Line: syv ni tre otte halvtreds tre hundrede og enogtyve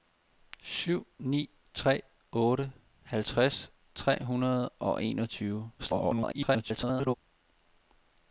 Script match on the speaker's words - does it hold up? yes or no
no